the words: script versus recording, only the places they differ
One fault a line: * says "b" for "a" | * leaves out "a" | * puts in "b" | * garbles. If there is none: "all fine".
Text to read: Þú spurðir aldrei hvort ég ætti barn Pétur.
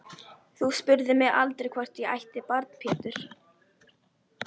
* puts in "mig"